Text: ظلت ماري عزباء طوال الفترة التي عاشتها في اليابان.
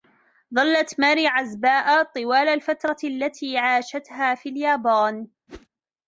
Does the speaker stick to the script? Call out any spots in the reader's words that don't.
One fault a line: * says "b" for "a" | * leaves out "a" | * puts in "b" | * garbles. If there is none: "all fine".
all fine